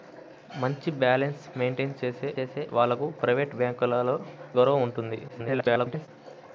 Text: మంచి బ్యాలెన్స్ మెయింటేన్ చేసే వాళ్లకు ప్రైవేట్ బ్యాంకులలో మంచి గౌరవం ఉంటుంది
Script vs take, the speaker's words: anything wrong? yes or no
yes